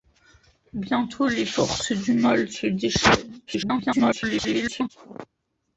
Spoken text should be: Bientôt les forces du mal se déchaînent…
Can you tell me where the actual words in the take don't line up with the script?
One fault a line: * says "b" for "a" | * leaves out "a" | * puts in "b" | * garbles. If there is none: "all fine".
* garbles